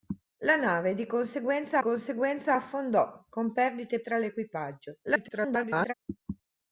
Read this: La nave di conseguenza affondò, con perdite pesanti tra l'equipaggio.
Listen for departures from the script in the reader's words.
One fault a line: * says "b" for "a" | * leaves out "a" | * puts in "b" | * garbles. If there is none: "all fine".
* puts in "conseguenza"
* leaves out "pesanti"
* garbles